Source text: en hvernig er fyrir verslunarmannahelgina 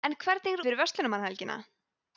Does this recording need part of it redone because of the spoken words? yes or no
no